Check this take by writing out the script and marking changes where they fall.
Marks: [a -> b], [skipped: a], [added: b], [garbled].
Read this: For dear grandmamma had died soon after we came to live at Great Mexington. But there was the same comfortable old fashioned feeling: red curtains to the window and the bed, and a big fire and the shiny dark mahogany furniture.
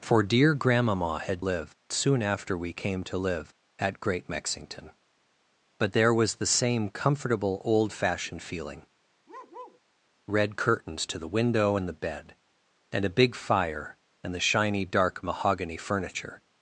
For dear grandmamma had [died -> live] soon after we came to live at Great Mexington. But there was the same comfortable old fashioned feeling: red curtains to the window and the bed, and a big fire and the shiny dark mahogany furniture.